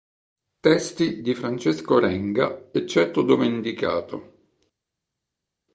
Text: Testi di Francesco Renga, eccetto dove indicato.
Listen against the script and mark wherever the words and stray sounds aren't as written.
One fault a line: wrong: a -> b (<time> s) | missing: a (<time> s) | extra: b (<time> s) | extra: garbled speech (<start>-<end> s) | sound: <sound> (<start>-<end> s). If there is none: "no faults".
no faults